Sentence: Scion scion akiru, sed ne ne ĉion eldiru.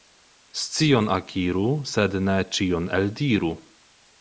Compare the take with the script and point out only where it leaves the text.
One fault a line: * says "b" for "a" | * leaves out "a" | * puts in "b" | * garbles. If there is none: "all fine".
* leaves out "scion"
* leaves out "ne"